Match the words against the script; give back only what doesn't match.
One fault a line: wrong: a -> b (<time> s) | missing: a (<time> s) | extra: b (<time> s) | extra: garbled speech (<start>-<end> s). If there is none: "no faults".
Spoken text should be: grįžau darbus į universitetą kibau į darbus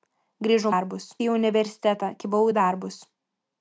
no faults